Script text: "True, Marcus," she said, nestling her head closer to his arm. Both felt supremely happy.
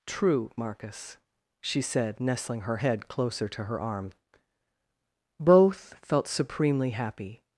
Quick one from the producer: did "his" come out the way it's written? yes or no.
no